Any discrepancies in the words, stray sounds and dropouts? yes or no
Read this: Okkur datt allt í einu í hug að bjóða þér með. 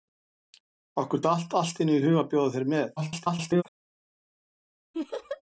yes